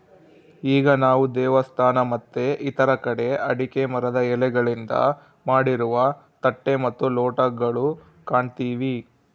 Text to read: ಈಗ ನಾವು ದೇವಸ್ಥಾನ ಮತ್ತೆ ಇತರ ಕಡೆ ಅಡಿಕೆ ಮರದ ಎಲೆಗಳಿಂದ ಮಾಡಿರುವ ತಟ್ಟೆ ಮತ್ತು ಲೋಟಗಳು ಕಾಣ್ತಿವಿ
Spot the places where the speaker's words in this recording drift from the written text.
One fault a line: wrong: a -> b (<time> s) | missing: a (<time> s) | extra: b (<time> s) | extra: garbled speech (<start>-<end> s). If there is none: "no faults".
no faults